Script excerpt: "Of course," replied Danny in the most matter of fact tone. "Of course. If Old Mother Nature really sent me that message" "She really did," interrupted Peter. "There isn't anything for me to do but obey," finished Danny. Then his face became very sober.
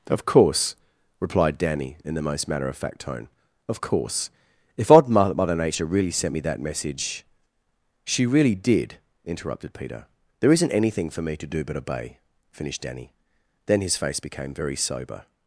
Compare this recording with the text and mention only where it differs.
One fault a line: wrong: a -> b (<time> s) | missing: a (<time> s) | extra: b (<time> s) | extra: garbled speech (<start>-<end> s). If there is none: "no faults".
wrong: Old -> Odd (4.9 s)